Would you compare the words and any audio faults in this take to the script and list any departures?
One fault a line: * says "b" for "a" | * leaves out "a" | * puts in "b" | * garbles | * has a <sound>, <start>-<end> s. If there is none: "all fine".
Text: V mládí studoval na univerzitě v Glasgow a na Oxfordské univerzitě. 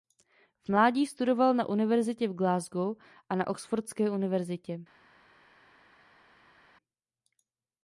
all fine